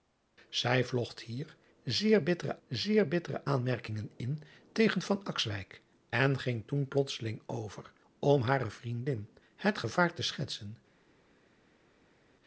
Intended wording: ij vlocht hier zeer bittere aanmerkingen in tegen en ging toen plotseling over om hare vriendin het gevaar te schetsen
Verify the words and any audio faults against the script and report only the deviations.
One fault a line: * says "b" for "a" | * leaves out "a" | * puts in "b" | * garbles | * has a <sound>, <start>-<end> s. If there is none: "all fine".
* puts in "zeer bittere"